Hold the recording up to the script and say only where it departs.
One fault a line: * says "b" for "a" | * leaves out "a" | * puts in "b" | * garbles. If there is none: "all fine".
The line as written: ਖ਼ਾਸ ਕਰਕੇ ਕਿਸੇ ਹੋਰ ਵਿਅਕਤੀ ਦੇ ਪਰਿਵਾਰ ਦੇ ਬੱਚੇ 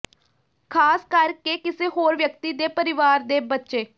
all fine